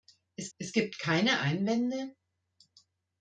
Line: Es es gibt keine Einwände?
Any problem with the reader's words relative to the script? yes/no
no